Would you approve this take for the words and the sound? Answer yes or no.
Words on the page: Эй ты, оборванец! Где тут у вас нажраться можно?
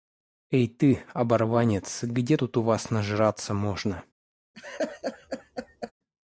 no